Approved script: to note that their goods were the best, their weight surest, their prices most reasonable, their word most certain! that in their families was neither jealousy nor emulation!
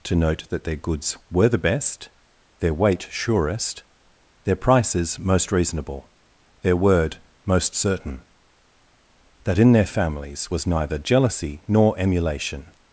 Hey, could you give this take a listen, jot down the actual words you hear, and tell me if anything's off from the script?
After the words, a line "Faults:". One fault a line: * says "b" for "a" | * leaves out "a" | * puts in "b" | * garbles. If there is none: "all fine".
to note that their goods were the best, their weight surest, their prices most reasonable, their word most certain! that in their families was neither jealousy nor emulation!
Faults:
all fine